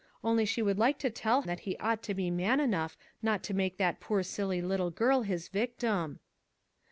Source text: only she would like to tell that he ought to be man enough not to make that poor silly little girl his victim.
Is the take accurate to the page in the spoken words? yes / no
yes